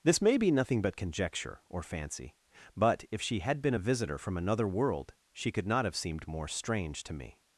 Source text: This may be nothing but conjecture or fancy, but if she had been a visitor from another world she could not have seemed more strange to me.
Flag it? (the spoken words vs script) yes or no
no